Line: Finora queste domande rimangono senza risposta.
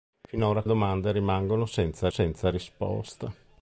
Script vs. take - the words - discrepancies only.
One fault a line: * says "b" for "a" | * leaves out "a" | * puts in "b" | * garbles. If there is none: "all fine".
* leaves out "queste"
* puts in "senza"